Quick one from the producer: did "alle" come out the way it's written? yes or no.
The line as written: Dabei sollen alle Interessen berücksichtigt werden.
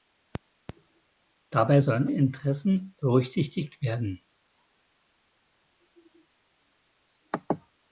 no